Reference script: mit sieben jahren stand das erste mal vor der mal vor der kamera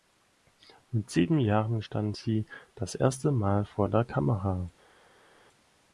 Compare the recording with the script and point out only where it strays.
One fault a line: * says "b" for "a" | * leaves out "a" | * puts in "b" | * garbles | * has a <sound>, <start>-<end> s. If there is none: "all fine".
* puts in "sie"
* leaves out "mal vor der"